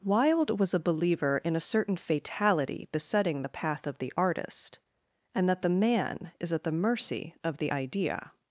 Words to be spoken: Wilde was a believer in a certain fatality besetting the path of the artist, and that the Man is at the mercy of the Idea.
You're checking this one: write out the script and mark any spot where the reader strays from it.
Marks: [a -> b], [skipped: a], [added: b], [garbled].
Wilde was a believer in a certain fatality besetting the path of the artist, and that the Man is at the mercy of the Idea.